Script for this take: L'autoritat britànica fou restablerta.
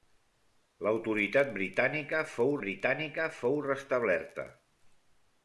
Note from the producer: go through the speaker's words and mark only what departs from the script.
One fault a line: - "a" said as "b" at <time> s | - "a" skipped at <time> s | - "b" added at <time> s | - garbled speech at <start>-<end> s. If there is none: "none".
- "britànica fou" added at 2.7 s